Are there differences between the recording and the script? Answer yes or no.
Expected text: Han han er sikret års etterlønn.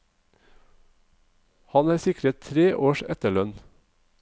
yes